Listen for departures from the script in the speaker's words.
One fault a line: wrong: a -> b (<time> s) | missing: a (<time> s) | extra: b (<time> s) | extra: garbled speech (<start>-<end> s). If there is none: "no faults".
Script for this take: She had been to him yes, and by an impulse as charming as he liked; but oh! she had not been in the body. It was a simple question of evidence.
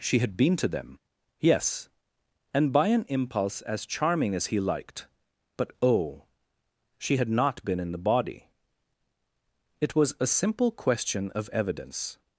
wrong: him -> them (0.7 s)